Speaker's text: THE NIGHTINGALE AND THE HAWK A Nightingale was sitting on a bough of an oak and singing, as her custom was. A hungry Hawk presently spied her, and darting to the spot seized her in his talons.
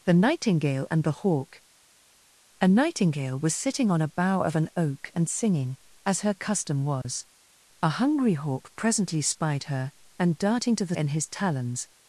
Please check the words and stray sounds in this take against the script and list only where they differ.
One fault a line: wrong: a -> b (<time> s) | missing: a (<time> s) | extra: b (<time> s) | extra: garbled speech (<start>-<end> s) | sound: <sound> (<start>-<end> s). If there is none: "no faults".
sound: dropout (7.0-7.0 s)
missing: spot seized her (10.9 s)